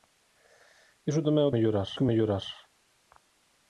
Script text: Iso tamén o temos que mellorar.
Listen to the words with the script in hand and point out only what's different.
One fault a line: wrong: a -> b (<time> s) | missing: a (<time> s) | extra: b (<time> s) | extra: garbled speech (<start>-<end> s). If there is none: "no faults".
wrong: temos -> mellorar (1.5 s)